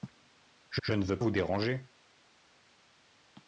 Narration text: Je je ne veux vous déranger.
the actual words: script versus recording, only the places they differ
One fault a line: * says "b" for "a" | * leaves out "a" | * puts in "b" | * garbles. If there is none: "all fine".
all fine